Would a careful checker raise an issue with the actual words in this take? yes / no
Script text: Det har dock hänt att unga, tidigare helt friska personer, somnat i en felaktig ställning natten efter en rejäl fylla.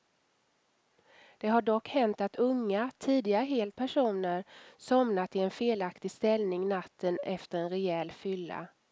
yes